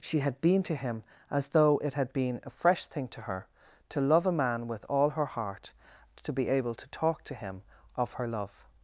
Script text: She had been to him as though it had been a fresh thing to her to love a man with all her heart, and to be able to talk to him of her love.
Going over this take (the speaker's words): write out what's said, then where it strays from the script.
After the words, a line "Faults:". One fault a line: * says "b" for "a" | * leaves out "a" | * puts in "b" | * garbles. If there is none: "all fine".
She had been to him as though it had been a fresh thing to her to love a man with all her heart, to be able to talk to him of her love.
Faults:
* leaves out "and"